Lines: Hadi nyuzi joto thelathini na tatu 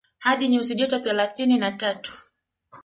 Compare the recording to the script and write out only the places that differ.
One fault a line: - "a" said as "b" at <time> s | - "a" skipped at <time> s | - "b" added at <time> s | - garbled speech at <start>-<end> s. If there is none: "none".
none